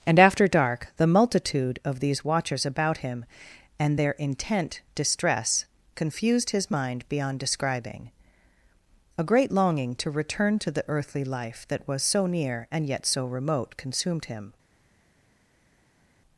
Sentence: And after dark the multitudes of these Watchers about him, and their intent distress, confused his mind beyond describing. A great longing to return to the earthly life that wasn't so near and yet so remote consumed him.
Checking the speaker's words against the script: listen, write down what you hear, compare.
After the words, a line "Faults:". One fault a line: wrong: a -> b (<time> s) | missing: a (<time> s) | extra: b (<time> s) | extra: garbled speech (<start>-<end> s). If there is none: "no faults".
And after dark the multitude of these Watchers about him, and their intent distress, confused his mind beyond describing. A great longing to return to the earthly life that was so near and yet so remote consumed him.
Faults:
wrong: multitudes -> multitude (1.1 s)
wrong: wasn't -> was (11.9 s)